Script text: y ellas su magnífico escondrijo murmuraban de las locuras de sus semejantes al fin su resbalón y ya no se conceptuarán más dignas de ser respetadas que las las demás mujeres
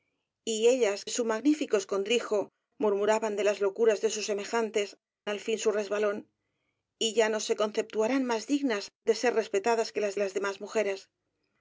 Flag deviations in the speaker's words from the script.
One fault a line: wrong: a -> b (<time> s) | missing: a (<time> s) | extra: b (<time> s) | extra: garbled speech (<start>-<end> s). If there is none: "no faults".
no faults